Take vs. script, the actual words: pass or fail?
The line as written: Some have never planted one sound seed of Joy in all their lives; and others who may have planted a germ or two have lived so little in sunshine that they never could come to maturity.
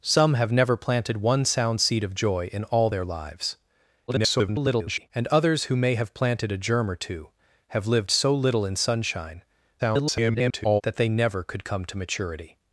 fail